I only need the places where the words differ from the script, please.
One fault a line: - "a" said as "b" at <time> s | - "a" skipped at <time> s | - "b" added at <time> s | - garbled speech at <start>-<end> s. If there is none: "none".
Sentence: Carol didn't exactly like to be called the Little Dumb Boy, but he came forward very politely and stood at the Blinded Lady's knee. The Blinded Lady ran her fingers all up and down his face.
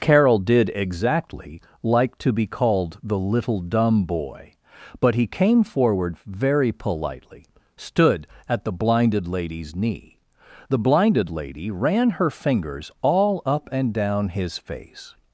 - "didn't" said as "did" at 0.4 s
- "and" skipped at 7.5 s